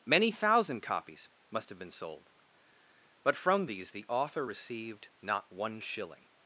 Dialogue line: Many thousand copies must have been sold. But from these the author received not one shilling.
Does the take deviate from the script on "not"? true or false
false